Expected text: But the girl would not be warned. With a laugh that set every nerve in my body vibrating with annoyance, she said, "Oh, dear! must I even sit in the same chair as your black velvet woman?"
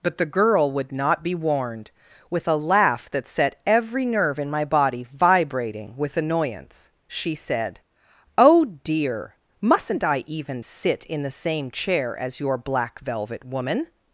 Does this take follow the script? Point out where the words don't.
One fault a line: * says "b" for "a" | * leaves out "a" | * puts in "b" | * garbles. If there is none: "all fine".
* says "mustn't" for "must"